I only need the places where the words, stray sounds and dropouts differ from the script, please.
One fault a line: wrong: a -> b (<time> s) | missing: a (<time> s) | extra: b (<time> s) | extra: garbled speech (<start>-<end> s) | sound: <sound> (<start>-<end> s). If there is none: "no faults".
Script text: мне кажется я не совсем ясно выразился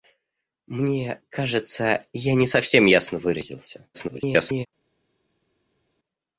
extra: garbled speech (3.9-4.7 s)